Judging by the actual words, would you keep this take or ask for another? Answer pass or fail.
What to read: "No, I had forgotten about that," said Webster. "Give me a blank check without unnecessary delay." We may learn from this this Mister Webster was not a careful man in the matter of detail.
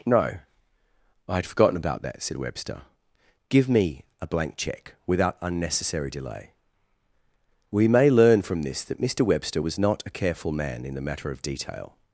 fail